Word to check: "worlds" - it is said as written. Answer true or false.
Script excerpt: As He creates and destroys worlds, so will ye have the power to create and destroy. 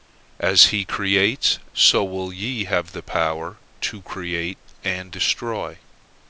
false